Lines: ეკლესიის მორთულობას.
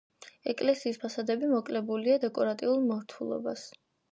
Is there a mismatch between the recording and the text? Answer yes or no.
yes